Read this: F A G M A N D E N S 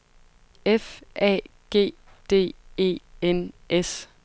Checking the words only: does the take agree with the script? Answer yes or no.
no